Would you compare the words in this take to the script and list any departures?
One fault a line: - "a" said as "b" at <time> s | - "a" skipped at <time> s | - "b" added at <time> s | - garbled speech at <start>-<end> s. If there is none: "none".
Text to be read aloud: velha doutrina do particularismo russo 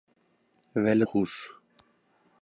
- "doutrina do particularismo" skipped at 1.1 s